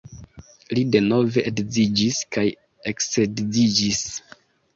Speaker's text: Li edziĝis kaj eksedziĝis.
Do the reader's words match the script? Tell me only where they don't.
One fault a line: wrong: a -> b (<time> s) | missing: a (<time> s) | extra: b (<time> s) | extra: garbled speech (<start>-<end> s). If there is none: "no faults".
extra: denove (0.9 s)